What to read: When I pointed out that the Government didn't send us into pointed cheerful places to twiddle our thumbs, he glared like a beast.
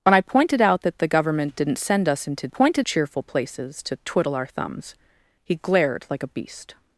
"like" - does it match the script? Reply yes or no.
yes